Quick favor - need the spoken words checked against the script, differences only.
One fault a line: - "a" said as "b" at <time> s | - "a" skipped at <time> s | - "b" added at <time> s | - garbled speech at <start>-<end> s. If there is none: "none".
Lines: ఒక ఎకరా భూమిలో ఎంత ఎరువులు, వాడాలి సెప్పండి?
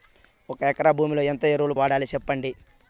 none